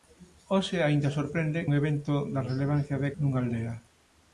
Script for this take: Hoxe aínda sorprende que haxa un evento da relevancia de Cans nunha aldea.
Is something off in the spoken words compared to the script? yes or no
yes